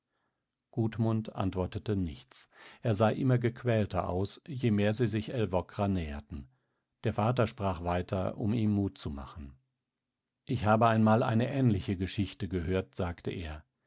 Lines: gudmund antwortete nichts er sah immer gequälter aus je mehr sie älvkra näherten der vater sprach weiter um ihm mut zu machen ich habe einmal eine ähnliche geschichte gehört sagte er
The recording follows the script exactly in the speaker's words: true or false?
false